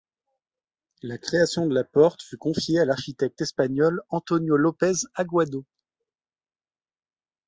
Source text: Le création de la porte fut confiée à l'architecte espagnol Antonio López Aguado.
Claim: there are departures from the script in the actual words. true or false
true